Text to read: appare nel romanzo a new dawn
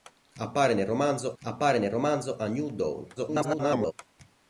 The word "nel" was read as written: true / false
true